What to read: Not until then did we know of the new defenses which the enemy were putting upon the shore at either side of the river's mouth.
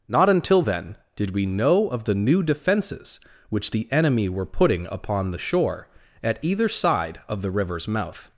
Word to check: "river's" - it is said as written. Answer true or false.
true